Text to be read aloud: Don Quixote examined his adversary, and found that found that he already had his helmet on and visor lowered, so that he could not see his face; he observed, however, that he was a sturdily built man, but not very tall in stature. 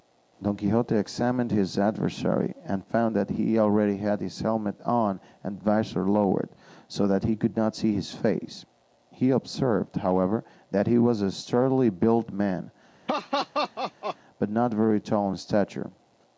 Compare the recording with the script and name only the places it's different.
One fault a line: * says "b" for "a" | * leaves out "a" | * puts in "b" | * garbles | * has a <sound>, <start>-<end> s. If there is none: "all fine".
* leaves out "found that"
* has a laugh, 13.1-14.2 s